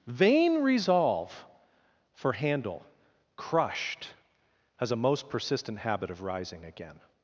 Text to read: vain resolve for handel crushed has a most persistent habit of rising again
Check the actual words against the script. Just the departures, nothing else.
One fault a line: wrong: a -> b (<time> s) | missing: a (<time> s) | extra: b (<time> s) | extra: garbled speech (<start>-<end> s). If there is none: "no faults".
no faults